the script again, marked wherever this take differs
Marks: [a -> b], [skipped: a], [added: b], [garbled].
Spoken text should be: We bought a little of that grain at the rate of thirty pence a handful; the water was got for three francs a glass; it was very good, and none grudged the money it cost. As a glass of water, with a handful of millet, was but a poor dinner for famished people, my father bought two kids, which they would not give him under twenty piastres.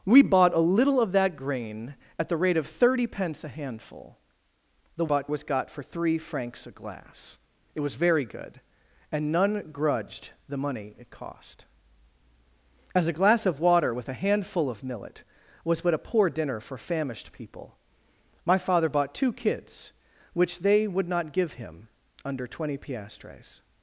We bought a little of that grain at the rate of thirty pence a handful; the [water -> bought] was got for three francs a glass; it was very good, and none grudged the money it cost. As a glass of water, with a handful of millet, was but a poor dinner for famished people, my father bought two kids, which they would not give him under twenty piastres.